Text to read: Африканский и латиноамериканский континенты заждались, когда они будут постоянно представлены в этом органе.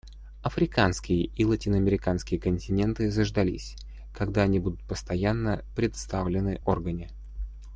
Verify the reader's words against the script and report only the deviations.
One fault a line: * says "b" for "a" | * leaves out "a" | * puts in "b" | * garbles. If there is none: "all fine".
* leaves out "в этом"